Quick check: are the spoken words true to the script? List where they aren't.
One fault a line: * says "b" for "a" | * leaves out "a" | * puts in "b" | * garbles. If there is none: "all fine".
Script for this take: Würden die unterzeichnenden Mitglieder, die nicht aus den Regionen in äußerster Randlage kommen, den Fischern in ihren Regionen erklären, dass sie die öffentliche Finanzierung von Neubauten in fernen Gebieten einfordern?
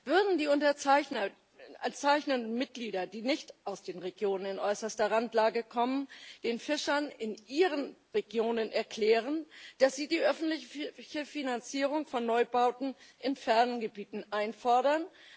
all fine